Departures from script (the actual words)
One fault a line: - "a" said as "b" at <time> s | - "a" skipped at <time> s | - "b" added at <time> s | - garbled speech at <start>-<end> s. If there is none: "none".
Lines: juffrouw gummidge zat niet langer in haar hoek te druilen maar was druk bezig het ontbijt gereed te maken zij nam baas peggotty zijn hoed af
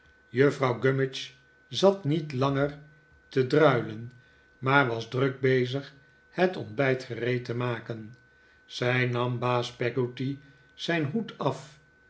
- "in haar hoek" skipped at 2.8 s